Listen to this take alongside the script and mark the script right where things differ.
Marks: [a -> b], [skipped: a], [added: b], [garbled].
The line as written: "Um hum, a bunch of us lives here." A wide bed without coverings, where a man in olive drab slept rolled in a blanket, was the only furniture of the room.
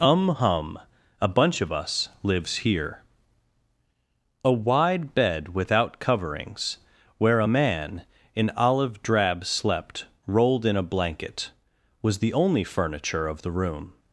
"Um hum, a bunch of us lives here." A wide bed without coverings, where a man in olive drab slept rolled in a blanket, was the only furniture of the room.